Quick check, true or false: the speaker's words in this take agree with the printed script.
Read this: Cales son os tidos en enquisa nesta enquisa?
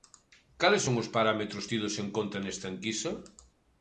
false